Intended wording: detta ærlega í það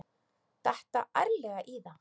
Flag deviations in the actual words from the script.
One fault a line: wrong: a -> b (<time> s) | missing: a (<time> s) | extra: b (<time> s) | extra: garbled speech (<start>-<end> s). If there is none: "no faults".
no faults